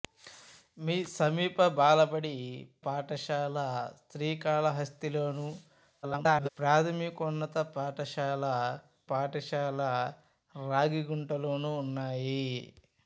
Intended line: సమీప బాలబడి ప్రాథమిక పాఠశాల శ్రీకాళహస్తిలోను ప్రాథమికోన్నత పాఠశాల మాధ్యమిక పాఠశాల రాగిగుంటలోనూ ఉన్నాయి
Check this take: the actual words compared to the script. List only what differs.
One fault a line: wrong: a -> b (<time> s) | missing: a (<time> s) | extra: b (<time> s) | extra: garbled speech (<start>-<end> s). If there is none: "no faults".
missing: ప్రాథమిక (2.3 s)
extra: garbled speech (6.0-6.5 s)
missing: మాధ్యమిక (8.5 s)